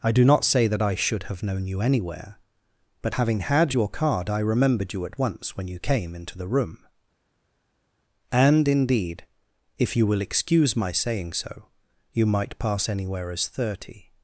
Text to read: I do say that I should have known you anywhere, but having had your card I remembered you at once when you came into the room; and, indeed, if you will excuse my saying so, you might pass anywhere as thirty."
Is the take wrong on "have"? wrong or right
right